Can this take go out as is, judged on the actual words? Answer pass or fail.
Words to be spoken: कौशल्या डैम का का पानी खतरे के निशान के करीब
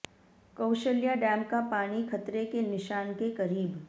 fail